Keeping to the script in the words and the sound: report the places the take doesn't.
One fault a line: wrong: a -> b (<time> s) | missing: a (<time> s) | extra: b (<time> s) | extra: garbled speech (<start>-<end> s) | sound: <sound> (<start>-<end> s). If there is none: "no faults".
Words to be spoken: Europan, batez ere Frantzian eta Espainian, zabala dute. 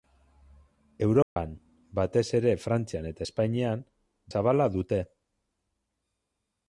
sound: dropout (1.2-1.4 s)